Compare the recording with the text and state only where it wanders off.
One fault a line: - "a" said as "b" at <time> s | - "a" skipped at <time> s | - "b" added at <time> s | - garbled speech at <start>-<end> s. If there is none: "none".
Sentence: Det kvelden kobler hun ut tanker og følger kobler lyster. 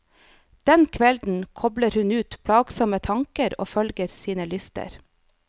- "Det" said as "Den" at 0.7 s
- "plagsomme" added at 2.5 s
- "kobler" said as "sine" at 4.2 s